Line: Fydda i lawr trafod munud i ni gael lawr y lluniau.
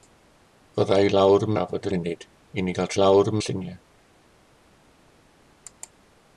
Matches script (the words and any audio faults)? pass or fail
pass